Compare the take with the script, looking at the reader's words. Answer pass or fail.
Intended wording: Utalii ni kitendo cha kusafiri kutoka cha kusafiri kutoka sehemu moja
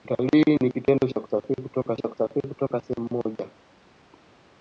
pass